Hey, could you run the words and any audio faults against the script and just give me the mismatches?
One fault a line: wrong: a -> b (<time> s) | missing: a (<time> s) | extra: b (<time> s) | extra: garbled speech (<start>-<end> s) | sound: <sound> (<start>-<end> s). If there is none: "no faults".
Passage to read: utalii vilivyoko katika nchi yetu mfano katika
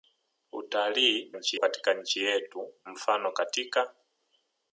wrong: vilivyoko -> nchi (1.3 s)